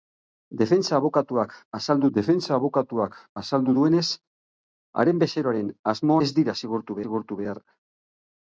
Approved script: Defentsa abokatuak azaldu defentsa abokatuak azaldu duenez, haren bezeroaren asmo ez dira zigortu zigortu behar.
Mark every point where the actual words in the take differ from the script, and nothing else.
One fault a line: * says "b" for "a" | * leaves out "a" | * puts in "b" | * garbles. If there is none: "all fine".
all fine